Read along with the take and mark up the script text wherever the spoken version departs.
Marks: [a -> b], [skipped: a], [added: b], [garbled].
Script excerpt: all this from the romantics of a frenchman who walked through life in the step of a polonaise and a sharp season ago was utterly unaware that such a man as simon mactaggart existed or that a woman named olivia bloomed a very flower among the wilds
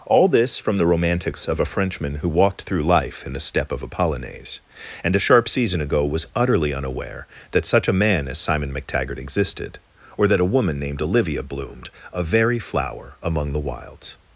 all this from the romantics of a frenchman who walked through life in the step of a polonaise and a sharp season ago was utterly unaware that such a man as simon mactaggart existed or that a woman named olivia bloomed a very flower among the wilds